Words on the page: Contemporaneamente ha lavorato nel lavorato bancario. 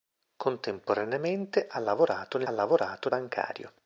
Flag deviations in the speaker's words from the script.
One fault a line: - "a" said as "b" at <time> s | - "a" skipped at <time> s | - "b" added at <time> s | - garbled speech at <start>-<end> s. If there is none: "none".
none